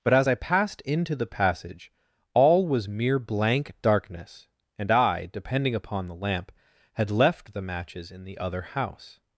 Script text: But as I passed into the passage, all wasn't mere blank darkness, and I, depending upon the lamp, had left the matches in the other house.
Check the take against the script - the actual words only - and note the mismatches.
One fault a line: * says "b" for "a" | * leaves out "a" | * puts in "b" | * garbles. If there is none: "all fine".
* says "was" for "wasn't"